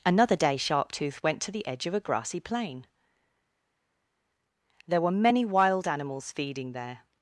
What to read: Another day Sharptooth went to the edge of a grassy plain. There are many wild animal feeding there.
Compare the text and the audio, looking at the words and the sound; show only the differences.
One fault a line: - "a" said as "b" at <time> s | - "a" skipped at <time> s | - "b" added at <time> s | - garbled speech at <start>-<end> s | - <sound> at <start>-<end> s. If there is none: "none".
- "are" said as "were" at 5.0 s
- "animal" said as "animals" at 5.9 s